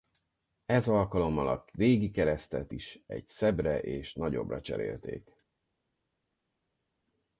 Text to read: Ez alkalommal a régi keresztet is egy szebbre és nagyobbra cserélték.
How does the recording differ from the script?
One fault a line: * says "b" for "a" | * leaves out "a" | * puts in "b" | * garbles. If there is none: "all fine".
all fine